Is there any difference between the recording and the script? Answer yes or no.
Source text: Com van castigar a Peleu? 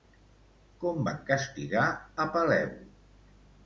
no